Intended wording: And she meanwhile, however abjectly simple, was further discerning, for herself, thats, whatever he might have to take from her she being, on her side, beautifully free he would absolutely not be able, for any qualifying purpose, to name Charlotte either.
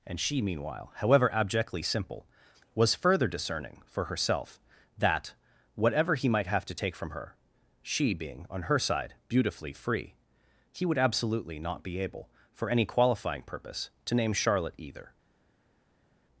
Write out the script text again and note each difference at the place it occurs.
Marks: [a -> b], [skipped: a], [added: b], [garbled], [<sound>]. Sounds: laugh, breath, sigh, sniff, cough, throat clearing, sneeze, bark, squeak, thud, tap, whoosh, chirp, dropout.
And she meanwhile, however abjectly simple, was further discerning, for herself, [thats, -> that] whatever he might have to take from her she being, on her side, beautifully free he would absolutely not be able, for any qualifying purpose, to name Charlotte either.